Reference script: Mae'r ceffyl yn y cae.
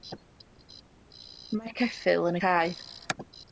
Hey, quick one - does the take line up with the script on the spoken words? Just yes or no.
yes